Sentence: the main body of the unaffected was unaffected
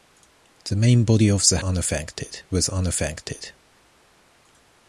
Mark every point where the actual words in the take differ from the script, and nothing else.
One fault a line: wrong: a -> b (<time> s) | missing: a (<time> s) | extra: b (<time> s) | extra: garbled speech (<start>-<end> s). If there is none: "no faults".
no faults